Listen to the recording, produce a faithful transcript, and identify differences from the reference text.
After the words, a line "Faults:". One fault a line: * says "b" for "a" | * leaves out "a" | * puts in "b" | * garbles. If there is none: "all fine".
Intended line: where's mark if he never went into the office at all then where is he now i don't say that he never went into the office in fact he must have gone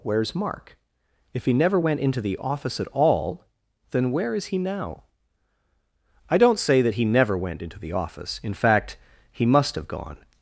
where's mark if he never went into the office at all then where is he now i don't say that he never went into the office in fact he must have gone
Faults:
all fine